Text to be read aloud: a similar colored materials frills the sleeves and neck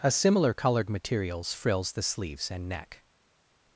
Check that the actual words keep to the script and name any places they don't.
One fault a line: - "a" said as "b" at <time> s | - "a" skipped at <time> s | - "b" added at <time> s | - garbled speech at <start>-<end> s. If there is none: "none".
none